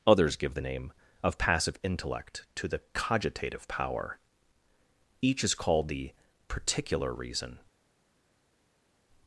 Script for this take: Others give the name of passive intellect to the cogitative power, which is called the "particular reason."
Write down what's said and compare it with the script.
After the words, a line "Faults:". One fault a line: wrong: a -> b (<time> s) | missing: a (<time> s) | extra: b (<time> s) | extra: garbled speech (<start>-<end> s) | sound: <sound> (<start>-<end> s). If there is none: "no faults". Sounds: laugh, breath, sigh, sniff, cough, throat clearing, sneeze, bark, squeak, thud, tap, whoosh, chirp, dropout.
Others give the name of passive intellect to the cogitative power, each is called the "particular reason."
Faults:
wrong: which -> each (5.2 s)